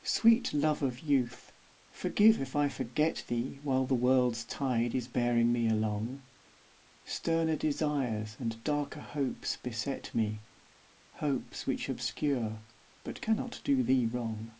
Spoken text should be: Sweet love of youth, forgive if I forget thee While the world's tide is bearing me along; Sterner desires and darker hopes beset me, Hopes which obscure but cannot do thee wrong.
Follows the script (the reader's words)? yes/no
yes